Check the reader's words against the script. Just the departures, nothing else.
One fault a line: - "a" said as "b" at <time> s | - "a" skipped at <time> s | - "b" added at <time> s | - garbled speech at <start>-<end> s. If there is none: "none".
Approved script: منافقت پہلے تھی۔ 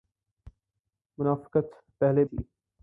none